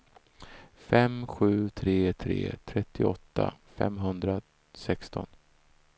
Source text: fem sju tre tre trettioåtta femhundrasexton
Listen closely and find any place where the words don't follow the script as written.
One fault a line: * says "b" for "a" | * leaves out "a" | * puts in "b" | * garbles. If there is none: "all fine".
all fine